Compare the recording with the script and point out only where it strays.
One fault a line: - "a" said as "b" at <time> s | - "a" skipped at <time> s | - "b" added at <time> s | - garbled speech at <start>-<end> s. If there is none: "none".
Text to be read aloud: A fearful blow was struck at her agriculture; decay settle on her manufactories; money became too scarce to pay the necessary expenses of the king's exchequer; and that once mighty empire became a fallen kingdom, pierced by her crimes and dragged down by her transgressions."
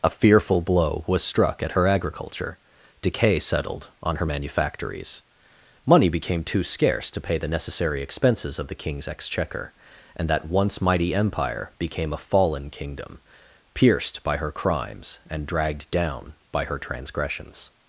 - "settle" said as "settled" at 3.4 s